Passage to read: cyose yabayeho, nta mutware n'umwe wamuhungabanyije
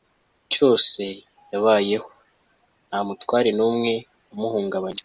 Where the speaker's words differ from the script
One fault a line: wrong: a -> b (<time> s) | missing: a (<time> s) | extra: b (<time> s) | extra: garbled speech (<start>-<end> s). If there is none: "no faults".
no faults